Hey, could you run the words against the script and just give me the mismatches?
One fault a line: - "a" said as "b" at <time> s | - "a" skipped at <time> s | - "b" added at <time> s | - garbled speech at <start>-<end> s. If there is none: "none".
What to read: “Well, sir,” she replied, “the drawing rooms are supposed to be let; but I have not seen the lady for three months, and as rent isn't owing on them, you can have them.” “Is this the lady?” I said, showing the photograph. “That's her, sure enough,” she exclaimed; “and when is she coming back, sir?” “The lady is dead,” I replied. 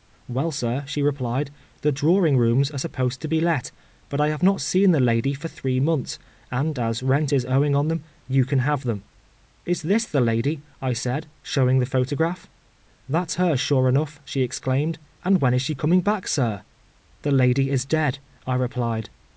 - "isn't" said as "is" at 7.3 s